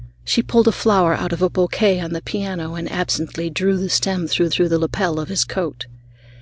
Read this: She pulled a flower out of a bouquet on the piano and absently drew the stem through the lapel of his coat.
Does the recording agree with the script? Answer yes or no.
no